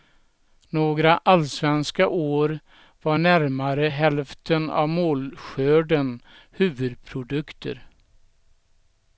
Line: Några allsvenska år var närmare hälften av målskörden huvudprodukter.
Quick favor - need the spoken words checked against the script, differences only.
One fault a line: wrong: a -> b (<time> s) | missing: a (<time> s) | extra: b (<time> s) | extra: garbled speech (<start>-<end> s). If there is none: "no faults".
no faults